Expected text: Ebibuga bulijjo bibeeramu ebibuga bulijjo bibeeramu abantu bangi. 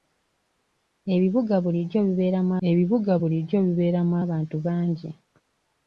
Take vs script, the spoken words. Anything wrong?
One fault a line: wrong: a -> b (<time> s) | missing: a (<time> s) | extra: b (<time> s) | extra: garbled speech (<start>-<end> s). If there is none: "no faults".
no faults